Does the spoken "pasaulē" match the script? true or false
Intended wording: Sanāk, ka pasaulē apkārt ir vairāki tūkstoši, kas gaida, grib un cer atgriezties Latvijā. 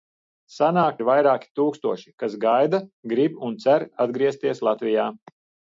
false